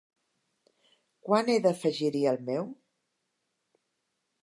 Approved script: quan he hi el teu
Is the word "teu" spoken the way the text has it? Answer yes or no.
no